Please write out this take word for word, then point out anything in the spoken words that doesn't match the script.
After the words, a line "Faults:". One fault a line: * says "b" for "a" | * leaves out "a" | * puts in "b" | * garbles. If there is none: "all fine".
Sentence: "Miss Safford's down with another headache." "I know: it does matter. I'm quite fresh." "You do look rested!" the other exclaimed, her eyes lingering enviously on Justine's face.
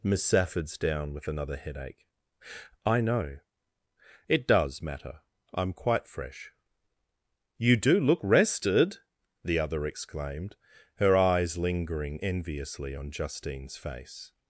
"Miss Safford's down with another headache." "I know: it does matter. I'm quite fresh." "You do look rested!" the other exclaimed, her eyes lingering enviously on Justine's face.
Faults:
all fine